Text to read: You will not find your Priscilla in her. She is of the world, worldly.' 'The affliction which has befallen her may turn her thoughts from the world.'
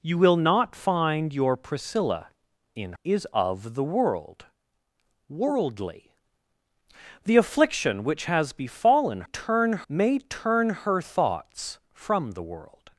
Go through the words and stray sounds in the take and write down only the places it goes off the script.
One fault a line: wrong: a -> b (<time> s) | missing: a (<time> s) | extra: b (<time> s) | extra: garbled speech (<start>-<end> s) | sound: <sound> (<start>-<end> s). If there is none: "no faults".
missing: her She (2.9 s)
wrong: her -> turn (9.2 s)